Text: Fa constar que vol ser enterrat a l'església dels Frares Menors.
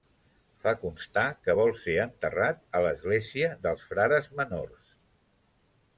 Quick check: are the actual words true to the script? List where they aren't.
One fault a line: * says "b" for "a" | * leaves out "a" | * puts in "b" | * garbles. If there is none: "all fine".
all fine